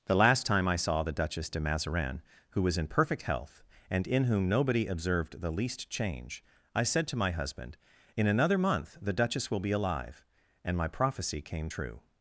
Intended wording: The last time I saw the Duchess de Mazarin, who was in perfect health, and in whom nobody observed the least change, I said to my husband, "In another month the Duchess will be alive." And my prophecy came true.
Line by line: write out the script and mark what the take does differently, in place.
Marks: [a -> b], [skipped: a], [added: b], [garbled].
The last time I saw the Duchess de Mazarin, who was in perfect health, and in whom nobody observed the least change, I said to my husband, "In another month the Duchess will be alive." And my prophecy came true.